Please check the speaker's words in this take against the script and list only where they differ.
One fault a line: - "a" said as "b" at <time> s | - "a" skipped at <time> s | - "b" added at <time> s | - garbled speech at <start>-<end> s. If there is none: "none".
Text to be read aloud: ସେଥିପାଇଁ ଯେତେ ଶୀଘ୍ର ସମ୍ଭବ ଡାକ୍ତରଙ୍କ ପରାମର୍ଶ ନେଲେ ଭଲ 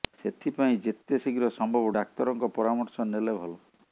none